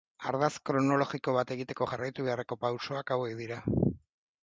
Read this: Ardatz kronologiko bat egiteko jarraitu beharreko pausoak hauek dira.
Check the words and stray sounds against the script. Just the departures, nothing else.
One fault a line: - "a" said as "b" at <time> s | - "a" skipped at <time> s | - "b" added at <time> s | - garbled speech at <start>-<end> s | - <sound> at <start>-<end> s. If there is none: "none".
none